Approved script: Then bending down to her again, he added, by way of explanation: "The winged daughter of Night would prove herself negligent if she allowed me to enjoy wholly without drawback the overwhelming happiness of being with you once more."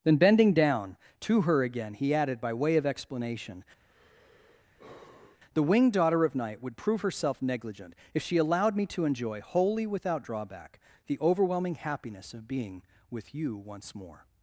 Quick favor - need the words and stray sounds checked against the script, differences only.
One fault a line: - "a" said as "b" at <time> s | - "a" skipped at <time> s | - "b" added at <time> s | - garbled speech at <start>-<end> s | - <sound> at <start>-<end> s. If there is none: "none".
- sigh at 3.9-5.4 s